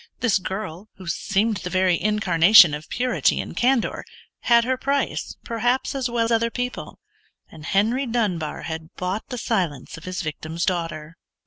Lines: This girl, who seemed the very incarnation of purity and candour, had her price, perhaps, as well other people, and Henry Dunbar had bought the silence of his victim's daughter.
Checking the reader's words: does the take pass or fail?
pass